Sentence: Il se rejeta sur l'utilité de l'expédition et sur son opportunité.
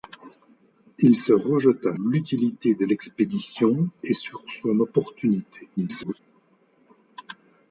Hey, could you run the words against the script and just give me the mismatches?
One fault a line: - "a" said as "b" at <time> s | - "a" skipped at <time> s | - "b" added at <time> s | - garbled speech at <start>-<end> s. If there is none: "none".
- "sur" skipped at 2.0 s
- garbled speech at 5.8-6.2 s